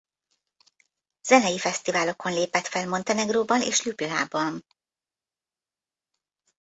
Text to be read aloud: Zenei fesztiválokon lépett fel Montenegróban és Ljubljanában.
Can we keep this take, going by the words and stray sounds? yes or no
yes